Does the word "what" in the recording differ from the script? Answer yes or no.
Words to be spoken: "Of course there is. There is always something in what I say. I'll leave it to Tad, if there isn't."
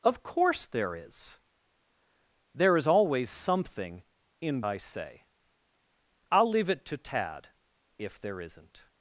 yes